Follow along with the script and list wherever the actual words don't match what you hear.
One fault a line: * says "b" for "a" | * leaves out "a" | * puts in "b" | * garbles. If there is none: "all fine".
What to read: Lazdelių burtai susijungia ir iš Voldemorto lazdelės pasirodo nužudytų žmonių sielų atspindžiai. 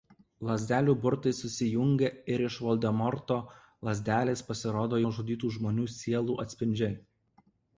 all fine